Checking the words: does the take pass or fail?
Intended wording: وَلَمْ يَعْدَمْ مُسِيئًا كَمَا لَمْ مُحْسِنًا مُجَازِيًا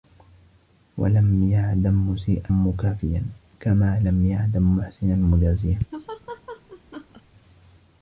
fail